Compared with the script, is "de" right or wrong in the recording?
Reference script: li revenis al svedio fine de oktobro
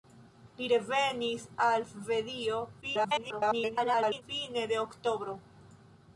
right